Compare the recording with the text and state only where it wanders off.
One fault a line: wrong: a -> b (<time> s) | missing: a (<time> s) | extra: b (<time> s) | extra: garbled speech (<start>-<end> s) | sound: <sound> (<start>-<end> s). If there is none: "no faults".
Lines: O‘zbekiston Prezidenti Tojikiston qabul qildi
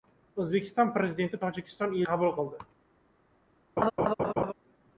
sound: laugh (3.8-4.5 s)